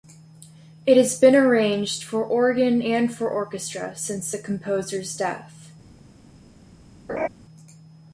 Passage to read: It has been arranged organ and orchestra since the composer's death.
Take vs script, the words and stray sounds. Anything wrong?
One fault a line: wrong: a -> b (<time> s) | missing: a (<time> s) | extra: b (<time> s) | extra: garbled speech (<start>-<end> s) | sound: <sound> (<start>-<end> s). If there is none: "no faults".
extra: for (2.0 s)
extra: for (3.1 s)
sound: laugh (7.1-7.3 s)